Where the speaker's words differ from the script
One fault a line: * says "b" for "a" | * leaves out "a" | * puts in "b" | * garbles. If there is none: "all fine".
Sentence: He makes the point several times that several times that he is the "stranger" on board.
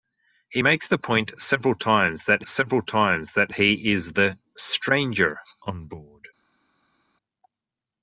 all fine